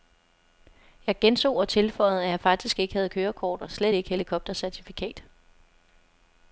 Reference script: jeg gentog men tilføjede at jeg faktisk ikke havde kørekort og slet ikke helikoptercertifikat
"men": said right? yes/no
no